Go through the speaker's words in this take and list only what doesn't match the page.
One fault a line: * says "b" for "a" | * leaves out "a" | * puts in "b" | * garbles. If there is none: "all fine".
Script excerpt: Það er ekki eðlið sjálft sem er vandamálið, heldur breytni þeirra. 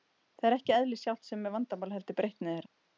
all fine